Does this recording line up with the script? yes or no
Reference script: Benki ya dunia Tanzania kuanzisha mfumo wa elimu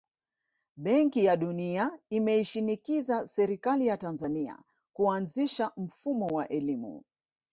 no